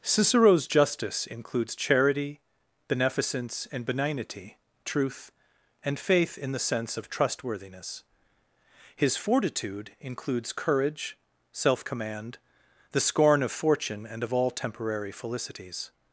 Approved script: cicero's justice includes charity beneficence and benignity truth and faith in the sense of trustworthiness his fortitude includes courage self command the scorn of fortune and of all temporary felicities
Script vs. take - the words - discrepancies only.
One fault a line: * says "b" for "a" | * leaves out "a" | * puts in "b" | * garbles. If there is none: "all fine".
all fine